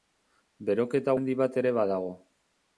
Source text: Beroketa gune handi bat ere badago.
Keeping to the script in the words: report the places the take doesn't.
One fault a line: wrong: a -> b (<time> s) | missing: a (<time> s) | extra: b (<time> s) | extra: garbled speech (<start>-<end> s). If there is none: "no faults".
missing: gune (1.1 s)